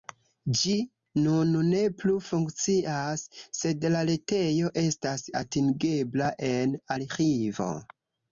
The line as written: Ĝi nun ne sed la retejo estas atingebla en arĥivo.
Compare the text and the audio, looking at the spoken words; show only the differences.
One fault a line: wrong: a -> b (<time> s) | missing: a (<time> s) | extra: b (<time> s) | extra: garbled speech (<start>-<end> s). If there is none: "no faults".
extra: plu funkcias (2.0 s)